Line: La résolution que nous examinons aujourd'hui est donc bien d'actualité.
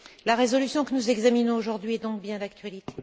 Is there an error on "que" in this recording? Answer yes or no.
no